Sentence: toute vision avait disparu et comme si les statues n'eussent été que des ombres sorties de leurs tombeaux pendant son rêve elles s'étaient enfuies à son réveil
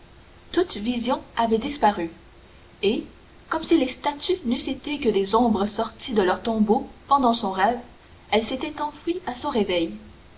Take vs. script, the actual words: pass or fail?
pass